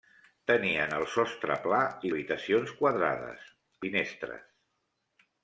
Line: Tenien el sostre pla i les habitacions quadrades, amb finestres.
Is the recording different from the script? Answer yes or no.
yes